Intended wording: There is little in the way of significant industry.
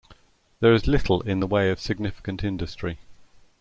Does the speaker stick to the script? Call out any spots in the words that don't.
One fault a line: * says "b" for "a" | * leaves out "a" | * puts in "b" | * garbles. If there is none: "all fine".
all fine